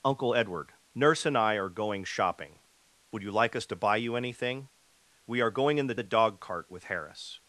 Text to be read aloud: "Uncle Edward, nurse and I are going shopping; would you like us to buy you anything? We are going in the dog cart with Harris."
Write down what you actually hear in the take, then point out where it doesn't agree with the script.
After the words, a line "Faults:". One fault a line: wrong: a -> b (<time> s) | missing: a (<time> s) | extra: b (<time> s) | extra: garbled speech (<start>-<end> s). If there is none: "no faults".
"Uncle Edward, nurse and I are going shopping; would you like us to buy you anything? We are going in the the dog cart with Harris."
Faults:
extra: the (5.9 s)